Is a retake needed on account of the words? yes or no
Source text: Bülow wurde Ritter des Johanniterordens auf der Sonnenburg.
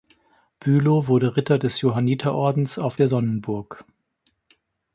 no